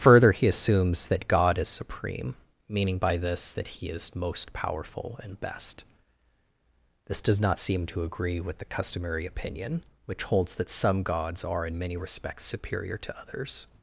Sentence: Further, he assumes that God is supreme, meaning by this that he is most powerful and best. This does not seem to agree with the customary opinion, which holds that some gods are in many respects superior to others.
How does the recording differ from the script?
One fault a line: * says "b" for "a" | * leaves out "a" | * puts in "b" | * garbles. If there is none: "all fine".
all fine